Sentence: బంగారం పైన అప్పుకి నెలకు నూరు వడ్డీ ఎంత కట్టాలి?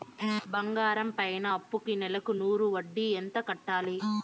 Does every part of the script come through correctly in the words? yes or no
yes